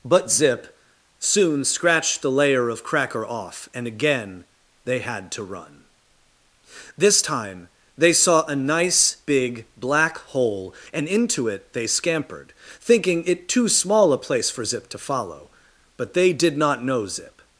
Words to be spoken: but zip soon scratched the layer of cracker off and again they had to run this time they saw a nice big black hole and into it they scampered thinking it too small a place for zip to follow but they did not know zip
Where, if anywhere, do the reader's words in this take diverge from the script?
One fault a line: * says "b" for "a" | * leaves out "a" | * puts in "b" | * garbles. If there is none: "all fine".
all fine